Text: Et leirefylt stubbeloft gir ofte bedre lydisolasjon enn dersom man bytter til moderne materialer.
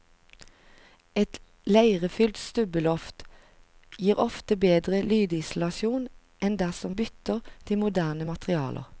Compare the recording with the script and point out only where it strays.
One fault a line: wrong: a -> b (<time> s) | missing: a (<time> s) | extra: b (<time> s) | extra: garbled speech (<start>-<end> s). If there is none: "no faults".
missing: man (7.0 s)